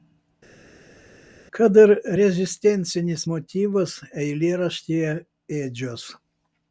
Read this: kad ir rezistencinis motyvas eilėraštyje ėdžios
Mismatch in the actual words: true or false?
false